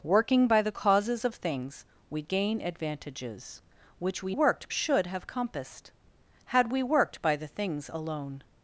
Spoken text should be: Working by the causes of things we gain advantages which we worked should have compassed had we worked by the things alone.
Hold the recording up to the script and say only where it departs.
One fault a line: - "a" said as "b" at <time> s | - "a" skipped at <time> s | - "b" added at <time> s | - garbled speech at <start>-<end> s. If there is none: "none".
none